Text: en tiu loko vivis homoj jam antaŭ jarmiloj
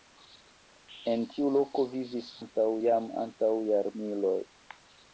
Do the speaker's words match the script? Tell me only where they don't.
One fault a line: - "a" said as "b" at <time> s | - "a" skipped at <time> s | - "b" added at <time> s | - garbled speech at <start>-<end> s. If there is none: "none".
- "homoj" said as "antaŭ" at 2.4 s